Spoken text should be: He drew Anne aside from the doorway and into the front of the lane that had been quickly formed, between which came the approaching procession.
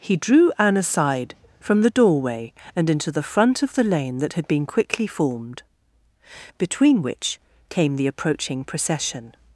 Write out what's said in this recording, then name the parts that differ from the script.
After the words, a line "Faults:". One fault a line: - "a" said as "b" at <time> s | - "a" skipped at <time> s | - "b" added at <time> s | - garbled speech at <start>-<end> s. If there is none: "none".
He drew Anne aside from the doorway and into the front of the lane that had been quickly formed, between which came the approaching procession.
Faults:
none